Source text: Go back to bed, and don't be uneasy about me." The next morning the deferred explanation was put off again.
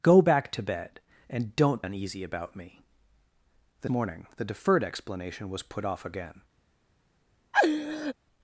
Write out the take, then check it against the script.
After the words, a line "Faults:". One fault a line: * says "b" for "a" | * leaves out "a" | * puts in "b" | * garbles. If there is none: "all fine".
Go back to bed, and don't uneasy about me." The morning the deferred explanation was put off again.
Faults:
* leaves out "be"
* leaves out "next"